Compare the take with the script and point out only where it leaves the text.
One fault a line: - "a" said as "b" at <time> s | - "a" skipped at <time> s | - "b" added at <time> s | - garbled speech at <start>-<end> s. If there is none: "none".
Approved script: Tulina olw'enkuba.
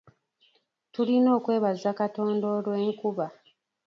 - "okwebaza Katonda" added at 1.4 s